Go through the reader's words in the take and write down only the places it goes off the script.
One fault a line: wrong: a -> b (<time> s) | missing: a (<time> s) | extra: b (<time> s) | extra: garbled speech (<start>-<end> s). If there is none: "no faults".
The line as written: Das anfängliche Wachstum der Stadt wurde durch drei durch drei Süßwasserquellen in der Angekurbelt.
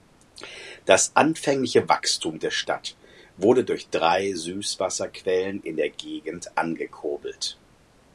missing: durch drei (4.3 s)
extra: Gegend (5.9 s)